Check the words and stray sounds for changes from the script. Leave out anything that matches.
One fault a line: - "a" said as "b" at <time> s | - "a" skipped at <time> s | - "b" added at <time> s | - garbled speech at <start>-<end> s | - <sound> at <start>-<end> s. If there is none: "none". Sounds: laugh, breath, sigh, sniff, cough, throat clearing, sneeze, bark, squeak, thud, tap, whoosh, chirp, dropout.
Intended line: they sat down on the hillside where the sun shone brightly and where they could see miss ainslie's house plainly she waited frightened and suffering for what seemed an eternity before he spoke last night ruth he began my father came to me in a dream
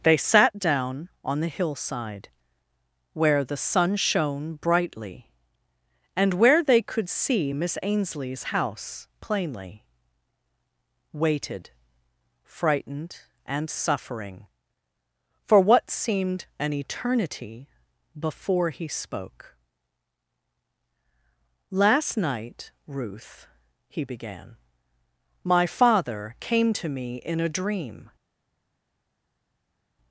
- "she" skipped at 9.8 s